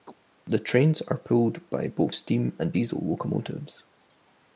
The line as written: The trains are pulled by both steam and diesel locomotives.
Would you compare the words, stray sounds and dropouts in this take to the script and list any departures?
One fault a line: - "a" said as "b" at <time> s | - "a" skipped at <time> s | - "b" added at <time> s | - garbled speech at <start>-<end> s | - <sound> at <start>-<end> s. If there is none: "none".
- chirp at 0.1-0.2 s